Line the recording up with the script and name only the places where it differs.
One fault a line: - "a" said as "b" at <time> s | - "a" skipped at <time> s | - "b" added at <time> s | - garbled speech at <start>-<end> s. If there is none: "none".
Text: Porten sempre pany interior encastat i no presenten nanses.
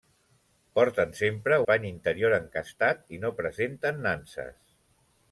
none